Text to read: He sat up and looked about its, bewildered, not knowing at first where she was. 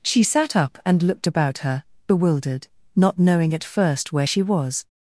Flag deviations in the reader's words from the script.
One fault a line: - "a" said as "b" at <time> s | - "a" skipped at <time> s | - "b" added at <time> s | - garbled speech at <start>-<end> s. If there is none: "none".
- "He" said as "She" at 0.0 s
- "its" said as "her" at 1.6 s